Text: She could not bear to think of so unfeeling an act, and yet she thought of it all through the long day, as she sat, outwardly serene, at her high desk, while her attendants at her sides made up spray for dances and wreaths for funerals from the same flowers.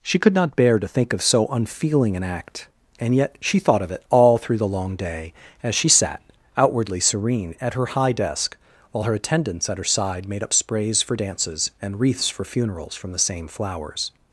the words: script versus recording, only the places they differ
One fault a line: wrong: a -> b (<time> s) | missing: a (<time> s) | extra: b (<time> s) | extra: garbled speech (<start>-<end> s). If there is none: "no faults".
wrong: sides -> side (9.8 s)
wrong: spray -> sprays (10.5 s)